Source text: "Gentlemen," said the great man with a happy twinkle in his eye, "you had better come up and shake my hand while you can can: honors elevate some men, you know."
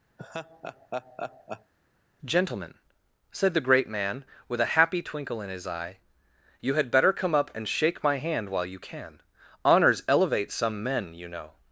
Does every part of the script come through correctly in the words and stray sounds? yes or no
no